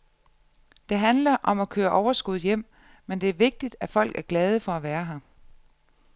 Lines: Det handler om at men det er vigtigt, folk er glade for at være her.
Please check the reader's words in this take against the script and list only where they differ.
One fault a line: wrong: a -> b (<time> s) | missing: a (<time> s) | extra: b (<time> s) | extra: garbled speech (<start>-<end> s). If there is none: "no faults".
extra: køre overskud hjem (1.7 s)
extra: at (3.8 s)